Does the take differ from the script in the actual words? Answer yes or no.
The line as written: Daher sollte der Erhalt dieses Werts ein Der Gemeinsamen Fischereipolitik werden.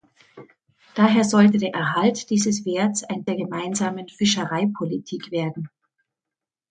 no